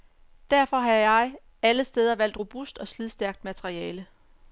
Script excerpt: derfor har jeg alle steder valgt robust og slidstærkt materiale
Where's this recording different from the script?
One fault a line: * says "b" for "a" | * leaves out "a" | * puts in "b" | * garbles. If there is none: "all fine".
all fine